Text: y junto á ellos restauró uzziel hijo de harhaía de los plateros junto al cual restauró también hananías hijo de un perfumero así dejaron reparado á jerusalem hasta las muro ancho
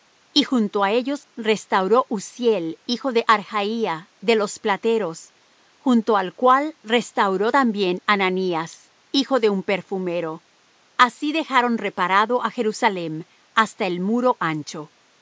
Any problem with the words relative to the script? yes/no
yes